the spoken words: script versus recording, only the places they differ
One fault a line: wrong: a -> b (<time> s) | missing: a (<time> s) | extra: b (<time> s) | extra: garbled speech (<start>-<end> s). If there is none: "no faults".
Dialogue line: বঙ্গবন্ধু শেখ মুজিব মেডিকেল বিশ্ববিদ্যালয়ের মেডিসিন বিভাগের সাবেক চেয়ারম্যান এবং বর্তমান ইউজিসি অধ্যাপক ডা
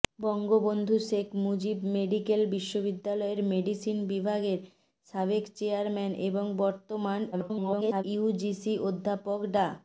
extra: garbled speech (7.3-8.0 s)